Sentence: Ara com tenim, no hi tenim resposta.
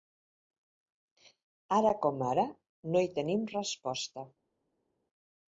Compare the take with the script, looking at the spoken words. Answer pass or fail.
fail